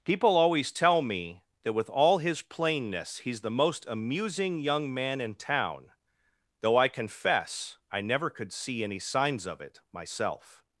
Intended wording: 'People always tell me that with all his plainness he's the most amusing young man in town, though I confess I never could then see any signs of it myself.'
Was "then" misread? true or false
true